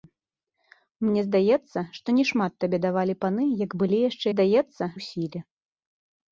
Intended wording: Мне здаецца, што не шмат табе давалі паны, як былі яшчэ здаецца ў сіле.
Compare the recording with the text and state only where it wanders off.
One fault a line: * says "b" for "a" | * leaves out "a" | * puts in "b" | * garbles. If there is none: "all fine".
all fine